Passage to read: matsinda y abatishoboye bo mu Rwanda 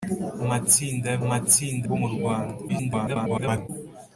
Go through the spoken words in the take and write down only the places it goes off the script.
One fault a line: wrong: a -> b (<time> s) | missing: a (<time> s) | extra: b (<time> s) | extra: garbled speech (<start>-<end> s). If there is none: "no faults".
wrong: abatishoboye -> matsinda (1.3 s)
extra: garbled speech (2.7-3.7 s)